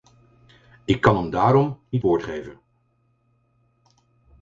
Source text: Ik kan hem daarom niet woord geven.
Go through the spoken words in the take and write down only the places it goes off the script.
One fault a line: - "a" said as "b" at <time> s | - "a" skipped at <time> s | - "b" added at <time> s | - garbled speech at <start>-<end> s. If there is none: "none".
none